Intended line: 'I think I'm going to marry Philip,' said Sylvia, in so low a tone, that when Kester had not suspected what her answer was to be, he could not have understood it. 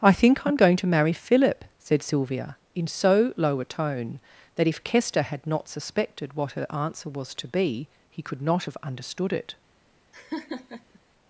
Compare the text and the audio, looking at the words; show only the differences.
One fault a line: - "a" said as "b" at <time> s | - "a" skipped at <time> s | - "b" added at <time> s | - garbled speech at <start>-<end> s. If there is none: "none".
- "when" said as "if" at 4.7 s